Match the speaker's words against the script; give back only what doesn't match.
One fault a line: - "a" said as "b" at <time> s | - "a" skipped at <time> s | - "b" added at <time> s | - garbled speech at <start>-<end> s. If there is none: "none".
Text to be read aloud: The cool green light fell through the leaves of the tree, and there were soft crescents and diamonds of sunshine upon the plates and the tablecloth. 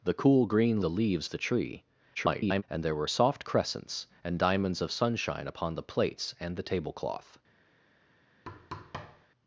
- "light fell through" skipped at 0.8 s
- "of" skipped at 1.3 s
- garbled speech at 2.1-2.6 s